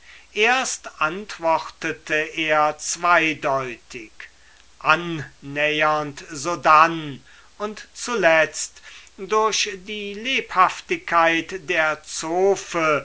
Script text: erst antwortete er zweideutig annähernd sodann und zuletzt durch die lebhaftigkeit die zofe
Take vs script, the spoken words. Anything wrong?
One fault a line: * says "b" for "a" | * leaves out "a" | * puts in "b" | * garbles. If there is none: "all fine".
* says "der" for "die"